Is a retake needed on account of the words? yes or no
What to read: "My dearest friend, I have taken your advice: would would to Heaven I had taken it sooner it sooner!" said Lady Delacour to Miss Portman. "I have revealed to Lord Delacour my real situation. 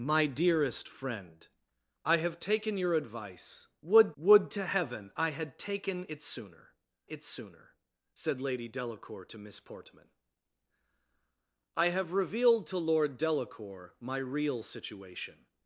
no